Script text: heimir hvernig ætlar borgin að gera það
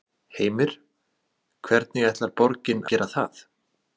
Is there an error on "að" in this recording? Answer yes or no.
yes